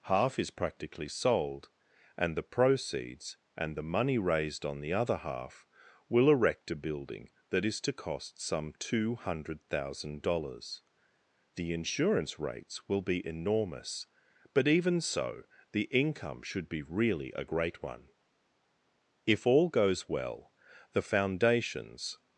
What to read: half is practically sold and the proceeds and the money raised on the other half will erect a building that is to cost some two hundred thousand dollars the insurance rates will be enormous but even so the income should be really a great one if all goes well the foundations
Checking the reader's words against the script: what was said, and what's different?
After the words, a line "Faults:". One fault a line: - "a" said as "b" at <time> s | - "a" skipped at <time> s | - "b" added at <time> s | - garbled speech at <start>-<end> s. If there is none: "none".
half is practically sold and the proceeds and the money raised on the other half will erect a building that is to cost some two hundred thousand dollars the insurance rates will be enormous but even so the income should be really a great one if all goes well the foundations
Faults:
none